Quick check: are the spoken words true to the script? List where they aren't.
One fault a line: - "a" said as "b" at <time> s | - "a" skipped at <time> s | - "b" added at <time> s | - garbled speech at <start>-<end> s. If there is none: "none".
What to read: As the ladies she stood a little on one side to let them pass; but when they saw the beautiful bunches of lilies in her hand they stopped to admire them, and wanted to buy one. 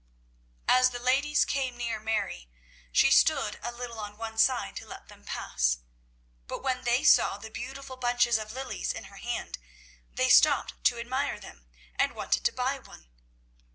- "came near Mary" added at 1.4 s